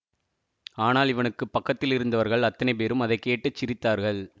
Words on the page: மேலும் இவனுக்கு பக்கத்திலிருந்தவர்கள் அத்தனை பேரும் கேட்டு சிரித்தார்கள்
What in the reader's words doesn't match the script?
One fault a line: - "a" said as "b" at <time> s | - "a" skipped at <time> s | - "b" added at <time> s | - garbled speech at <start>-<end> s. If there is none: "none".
- "மேலும்" said as "ஆனால்" at 0.8 s
- "அதை" added at 3.0 s